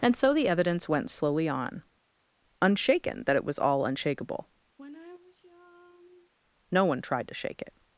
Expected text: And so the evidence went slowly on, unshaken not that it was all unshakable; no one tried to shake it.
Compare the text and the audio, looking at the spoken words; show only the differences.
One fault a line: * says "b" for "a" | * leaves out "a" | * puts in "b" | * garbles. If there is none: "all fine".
* leaves out "not"